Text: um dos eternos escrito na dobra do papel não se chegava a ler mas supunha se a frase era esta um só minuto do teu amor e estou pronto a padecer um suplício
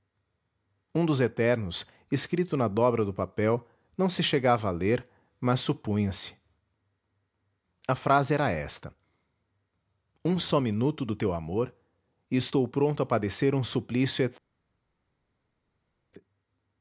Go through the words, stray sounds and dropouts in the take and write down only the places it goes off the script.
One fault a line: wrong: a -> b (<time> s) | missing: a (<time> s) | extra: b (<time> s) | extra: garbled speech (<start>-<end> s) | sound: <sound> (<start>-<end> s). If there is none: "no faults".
no faults